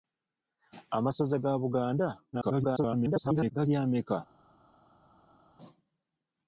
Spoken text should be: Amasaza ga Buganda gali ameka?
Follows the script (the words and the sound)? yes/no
no